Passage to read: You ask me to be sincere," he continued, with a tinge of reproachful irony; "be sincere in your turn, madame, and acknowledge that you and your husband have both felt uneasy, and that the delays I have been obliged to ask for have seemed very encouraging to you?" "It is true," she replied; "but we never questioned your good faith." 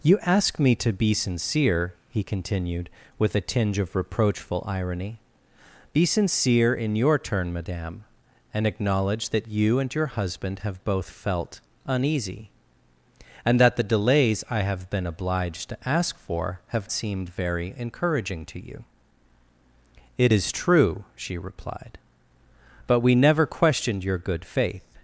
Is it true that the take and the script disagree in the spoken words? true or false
false